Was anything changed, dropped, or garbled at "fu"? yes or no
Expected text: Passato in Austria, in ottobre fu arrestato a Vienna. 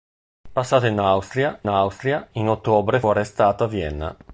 yes